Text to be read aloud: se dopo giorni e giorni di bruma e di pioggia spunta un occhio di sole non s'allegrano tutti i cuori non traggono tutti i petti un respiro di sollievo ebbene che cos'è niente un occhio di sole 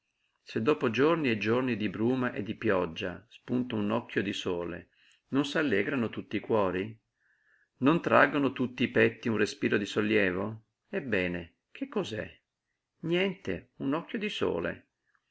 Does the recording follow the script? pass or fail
pass